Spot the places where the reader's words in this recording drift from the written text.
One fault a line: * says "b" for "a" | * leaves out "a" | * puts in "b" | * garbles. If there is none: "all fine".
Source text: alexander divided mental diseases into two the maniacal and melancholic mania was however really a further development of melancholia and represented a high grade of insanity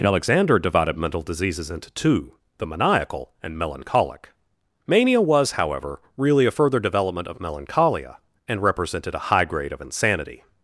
all fine